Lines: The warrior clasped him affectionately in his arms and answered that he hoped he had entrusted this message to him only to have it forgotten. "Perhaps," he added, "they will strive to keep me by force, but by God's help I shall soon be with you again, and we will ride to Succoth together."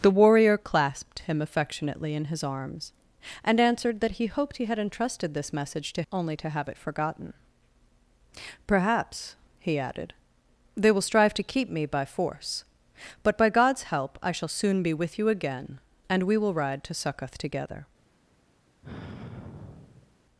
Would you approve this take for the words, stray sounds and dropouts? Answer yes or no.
no